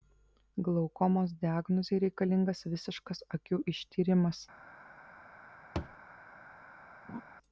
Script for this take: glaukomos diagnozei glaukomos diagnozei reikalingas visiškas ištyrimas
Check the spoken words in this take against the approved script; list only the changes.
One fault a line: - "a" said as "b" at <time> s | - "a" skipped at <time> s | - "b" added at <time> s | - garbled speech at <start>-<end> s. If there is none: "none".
- "glaukomos diagnozei" skipped at 2.0 s
- "akių" added at 3.4 s